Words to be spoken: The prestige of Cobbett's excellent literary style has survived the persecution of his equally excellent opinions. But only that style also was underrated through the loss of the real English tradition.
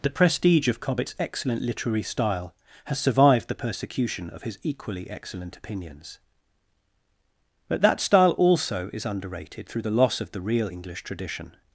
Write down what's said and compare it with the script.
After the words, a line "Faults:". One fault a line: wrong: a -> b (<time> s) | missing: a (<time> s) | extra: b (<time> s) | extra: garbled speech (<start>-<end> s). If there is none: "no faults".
The prestige of Cobbett's excellent literary style has survived the persecution of his equally excellent opinions. But that style also is underrated through the loss of the real English tradition.
Faults:
missing: only (7.8 s)
wrong: was -> is (8.9 s)